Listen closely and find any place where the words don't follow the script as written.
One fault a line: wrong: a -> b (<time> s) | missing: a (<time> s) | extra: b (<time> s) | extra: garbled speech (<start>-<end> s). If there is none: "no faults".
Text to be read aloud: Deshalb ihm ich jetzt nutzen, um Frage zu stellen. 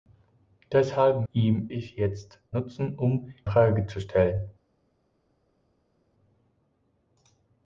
no faults